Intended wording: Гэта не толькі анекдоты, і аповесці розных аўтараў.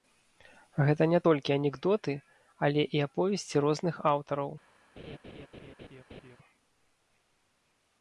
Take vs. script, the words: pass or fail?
fail